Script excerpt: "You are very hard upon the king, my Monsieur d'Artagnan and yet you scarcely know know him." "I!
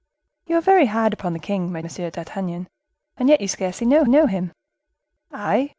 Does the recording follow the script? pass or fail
pass